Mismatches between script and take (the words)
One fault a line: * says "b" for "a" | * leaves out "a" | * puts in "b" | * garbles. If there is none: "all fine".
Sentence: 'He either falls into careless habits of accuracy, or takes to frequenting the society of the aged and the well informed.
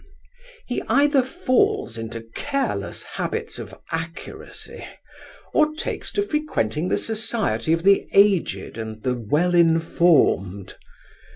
all fine